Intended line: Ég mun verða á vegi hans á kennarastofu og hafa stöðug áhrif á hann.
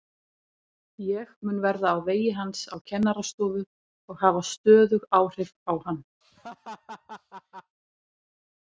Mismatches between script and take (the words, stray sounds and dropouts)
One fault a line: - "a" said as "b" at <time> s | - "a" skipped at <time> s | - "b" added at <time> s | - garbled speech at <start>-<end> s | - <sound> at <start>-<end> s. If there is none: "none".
- laugh at 6.2-7.8 s